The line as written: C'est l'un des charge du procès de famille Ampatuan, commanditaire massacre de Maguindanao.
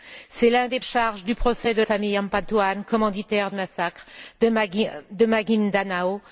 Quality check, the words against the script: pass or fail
pass